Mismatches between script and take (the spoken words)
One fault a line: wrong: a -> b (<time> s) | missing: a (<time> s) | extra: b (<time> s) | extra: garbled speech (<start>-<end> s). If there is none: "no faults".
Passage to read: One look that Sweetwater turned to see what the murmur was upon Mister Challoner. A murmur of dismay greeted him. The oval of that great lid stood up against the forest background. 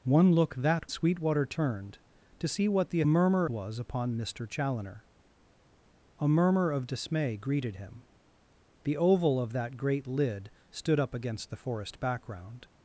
no faults